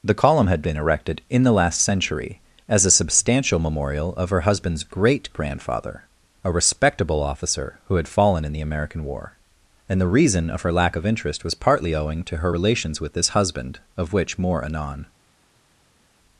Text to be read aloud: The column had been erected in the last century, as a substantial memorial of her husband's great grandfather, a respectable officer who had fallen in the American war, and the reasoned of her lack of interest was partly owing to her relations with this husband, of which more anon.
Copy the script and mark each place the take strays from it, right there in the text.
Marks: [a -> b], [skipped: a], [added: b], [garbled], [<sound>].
The column had been erected in the last century, as a substantial memorial of her husband's great grandfather, a respectable officer who had fallen in the American war, and the [reasoned -> reason] of her lack of interest was partly owing to her relations with this husband, of which more anon.